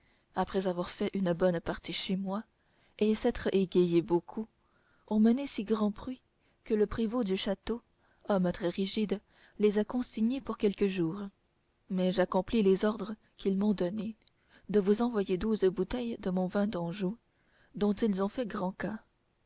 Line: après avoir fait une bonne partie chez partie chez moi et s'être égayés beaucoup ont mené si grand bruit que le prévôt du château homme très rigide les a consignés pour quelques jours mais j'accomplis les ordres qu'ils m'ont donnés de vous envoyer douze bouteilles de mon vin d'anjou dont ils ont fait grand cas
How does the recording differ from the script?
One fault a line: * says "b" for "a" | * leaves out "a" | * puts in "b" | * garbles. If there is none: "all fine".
* leaves out "partie chez"